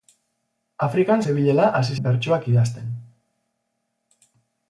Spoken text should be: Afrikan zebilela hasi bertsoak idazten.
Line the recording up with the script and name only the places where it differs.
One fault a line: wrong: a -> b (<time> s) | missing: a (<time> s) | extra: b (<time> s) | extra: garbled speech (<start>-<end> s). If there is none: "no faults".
no faults